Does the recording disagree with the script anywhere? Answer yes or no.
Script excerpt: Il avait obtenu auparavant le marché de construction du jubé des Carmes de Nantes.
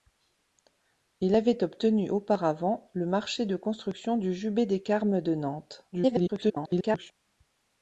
yes